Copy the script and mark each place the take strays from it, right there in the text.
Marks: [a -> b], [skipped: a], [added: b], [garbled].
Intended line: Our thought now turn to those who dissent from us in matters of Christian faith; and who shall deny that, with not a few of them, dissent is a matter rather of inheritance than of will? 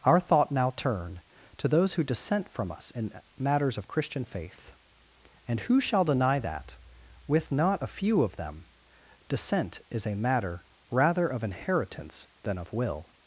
Our thought now turn to those who dissent from us in matters of Christian faith; and who shall deny that, with not a few of them, dissent is a matter rather of inheritance than of will?